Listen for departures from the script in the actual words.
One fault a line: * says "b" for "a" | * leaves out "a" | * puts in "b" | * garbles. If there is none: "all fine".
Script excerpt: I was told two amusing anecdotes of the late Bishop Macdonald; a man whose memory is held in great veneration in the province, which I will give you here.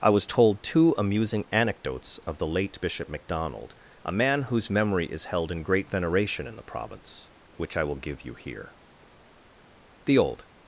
* puts in "The old"